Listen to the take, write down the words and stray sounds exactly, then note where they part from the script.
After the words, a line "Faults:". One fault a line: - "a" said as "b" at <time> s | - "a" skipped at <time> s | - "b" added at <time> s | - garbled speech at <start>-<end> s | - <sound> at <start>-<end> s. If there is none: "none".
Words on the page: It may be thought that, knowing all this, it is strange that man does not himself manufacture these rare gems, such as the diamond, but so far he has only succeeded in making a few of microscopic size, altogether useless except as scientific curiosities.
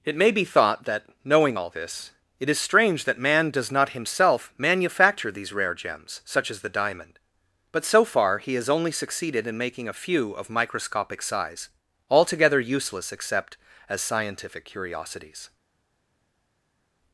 It may be thought that, knowing all this, it is strange that man does not himself manufacture these rare gems, such as the diamond, but so far he has only succeeded in making a few of microscopic size, altogether useless except as scientific curiosities.
Faults:
none